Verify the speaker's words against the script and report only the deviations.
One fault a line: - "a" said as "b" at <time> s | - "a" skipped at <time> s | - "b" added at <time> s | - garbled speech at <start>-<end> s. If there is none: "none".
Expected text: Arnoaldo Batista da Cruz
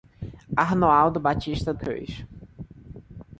- "da" skipped at 1.7 s